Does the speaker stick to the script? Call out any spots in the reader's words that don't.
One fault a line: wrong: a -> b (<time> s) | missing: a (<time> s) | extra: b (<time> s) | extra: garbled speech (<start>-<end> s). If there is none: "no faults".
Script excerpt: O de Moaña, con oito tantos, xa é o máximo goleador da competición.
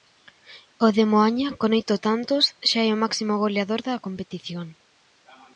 no faults